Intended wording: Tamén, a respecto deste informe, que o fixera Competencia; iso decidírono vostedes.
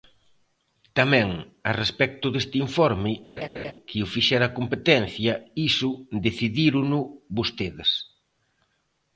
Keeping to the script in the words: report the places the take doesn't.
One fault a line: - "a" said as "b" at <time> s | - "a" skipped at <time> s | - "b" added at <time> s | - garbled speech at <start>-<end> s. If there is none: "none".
none